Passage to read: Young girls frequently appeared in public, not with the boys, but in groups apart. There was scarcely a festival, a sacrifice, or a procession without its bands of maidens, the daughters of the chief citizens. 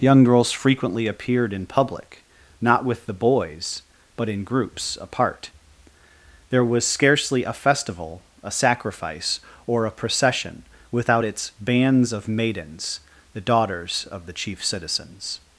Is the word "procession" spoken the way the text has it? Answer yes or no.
yes